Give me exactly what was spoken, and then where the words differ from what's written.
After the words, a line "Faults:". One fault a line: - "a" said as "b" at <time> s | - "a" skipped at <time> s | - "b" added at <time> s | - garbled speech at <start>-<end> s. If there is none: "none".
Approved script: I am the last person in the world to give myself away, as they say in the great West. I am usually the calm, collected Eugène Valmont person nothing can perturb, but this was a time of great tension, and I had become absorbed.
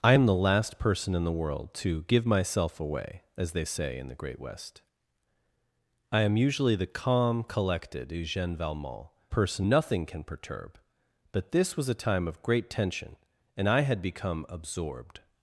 I am the last person in the world to give myself away, as they say in the great West. I am usually the calm, collected Eugène Valmont person nothing can perturb, but this was a time of great tension, and I had become absorbed.
Faults:
none